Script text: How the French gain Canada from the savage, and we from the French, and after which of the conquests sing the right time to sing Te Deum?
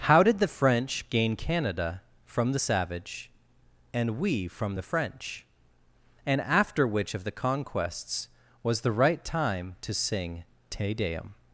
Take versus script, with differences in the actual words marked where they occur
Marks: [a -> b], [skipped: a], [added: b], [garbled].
How [added: did] the French gain Canada from the savage, and we from the French, and after which of the conquests [sing -> was] the right time to sing Te Deum?